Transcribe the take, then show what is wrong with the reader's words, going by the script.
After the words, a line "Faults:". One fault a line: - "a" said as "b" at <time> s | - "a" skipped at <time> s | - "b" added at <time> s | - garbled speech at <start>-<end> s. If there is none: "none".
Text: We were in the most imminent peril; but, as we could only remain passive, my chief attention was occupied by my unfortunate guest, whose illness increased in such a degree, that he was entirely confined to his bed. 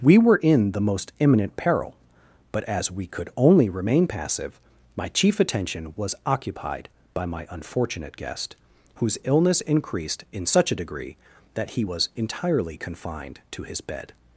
We were in the most imminent peril; but, as we could only remain passive, my chief attention was occupied by my unfortunate guest, whose illness increased in such a degree, that he was entirely confined to his bed.
Faults:
none